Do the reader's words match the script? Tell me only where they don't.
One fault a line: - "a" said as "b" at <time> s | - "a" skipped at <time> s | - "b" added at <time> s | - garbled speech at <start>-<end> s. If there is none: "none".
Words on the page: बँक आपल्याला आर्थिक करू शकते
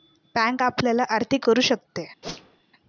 none